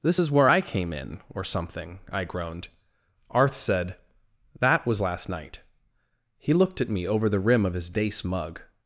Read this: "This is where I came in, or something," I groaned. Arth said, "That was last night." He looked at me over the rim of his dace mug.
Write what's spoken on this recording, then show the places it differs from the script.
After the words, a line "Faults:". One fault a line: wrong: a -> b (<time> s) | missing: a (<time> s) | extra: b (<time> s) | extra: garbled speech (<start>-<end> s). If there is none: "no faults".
"This is where I came in, or something," I groaned. Arth said, "That was last night." He looked at me over the rim of his dace mug.
Faults:
no faults